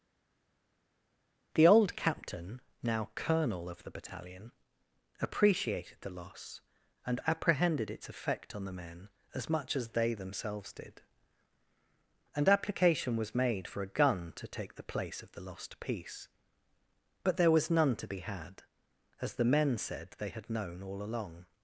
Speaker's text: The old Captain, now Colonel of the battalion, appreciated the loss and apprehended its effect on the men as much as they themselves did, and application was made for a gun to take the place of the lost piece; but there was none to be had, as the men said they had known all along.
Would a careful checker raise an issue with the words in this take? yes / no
no